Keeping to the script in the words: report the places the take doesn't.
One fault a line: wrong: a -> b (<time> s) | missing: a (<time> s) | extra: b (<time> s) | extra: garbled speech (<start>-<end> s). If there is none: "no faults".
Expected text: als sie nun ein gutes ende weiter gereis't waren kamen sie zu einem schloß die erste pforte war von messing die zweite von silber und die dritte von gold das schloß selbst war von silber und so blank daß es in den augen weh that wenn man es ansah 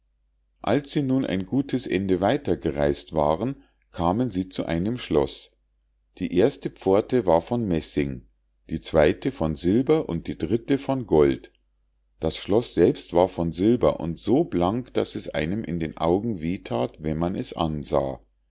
extra: einem (15.3 s)